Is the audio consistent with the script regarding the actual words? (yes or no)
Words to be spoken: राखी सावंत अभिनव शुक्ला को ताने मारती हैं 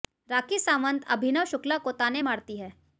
yes